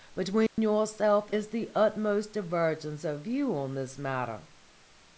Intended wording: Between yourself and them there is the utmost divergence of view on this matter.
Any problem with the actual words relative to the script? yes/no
yes